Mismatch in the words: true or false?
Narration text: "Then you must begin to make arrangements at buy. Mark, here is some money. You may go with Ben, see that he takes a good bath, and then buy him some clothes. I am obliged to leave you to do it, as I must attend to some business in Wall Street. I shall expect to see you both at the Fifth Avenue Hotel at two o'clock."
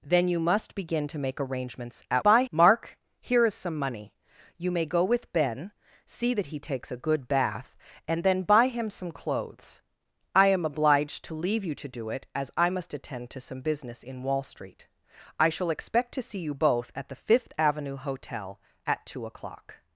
false